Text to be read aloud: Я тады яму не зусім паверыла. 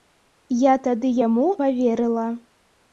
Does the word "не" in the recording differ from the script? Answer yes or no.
yes